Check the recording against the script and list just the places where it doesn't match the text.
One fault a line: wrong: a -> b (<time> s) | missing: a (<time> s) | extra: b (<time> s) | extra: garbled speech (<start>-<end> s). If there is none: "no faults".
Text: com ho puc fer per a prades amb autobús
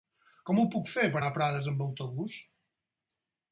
no faults